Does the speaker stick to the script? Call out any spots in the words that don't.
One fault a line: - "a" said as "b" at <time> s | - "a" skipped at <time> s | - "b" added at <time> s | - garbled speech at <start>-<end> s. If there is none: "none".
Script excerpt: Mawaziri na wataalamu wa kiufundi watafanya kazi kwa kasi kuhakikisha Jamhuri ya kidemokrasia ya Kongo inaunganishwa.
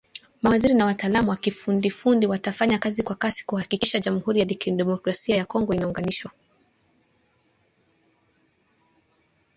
none